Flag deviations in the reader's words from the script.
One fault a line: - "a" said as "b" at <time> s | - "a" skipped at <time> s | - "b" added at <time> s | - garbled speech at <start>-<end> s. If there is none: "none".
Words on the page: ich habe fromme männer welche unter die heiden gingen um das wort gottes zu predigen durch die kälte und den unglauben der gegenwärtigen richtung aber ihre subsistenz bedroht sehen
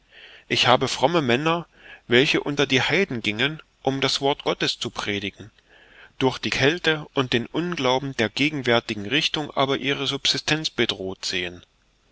none